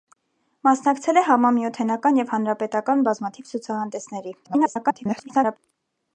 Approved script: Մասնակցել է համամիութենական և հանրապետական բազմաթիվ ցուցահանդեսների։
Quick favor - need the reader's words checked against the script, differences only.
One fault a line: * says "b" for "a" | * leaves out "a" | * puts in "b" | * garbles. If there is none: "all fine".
* garbles